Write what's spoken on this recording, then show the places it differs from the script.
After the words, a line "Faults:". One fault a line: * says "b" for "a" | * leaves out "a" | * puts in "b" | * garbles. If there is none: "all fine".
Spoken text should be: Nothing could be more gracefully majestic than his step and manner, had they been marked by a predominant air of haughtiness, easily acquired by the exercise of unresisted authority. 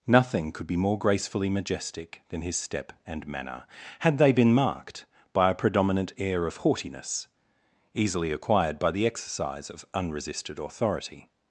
Nothing could be more gracefully majestic than his step and manner, had they been marked by a predominant air of haughtiness, easily acquired by the exercise of unresisted authority.
Faults:
all fine